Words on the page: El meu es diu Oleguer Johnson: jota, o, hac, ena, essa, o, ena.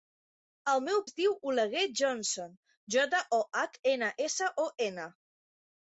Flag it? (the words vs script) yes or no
no